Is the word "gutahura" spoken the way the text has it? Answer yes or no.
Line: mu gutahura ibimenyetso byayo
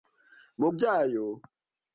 no